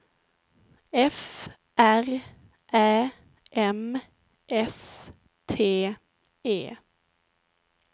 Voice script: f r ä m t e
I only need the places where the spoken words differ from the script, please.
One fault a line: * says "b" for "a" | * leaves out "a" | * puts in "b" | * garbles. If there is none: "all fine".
* puts in "s"